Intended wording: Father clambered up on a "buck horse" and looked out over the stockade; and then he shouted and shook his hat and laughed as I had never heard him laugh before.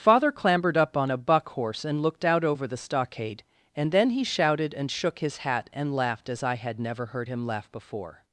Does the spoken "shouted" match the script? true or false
true